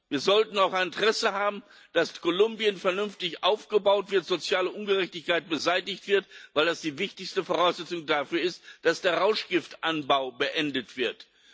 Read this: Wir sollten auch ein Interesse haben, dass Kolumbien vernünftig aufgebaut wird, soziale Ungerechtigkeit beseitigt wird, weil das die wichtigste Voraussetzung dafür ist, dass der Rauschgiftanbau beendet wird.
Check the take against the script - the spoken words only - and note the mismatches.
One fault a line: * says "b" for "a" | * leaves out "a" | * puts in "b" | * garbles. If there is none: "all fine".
all fine